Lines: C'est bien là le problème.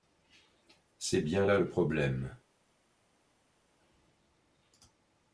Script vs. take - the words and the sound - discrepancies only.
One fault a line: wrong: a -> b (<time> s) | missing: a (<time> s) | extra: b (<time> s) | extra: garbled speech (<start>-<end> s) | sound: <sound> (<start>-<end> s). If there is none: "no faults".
no faults